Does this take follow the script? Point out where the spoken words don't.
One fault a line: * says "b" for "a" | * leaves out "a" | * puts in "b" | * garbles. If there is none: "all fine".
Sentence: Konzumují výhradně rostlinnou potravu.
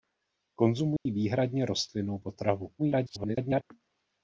* garbles